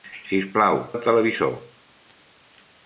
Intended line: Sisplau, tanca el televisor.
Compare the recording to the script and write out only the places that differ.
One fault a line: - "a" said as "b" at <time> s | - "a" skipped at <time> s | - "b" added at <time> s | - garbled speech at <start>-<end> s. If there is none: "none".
- "tanca" skipped at 0.8 s